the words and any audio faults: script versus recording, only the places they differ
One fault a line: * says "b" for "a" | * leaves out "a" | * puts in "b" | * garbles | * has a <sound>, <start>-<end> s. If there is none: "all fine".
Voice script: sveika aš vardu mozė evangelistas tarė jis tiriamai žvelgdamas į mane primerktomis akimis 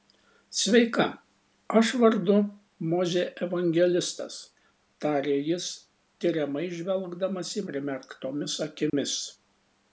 * leaves out "mane"
* has a dropout, 8.9-8.9 s